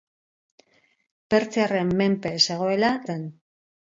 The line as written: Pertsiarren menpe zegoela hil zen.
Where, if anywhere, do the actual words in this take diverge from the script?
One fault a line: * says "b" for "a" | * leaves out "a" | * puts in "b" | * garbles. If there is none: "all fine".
* leaves out "hil"